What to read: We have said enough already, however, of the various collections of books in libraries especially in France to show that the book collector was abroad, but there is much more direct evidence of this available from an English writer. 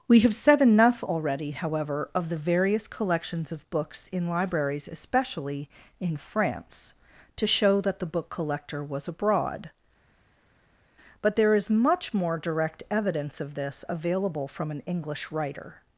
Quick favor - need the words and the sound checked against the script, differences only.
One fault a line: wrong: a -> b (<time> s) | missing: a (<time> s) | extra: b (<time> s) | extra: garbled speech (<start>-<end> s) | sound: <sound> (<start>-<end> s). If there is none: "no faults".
no faults